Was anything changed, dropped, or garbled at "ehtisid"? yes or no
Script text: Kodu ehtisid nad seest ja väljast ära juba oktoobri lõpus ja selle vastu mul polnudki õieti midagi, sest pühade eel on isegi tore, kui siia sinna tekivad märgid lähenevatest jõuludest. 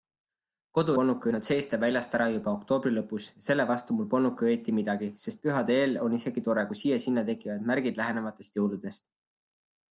yes